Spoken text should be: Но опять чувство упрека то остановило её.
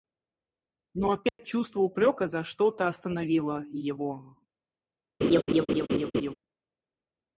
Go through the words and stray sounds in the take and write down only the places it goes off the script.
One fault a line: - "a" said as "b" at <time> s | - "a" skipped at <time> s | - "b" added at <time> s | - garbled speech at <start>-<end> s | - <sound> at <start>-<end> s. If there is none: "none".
- dropout at 1.3-1.4 s
- "за что" added at 2.3 s
- "её" said as "его" at 3.6 s
- laugh at 5.2-6.3 s